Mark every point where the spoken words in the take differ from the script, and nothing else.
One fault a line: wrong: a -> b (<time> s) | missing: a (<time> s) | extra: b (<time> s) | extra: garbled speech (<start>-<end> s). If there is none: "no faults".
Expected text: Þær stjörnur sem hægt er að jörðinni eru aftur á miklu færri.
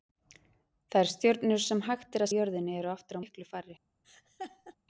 no faults